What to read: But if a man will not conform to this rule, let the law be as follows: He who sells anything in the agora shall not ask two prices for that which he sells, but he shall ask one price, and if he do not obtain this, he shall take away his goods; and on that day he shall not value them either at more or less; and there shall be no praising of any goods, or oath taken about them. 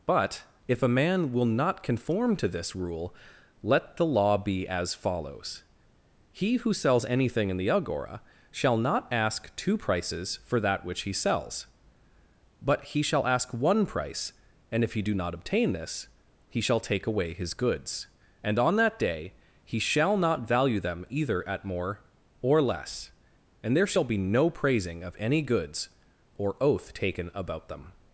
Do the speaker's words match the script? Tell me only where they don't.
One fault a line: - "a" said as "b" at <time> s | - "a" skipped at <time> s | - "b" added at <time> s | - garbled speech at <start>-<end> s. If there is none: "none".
none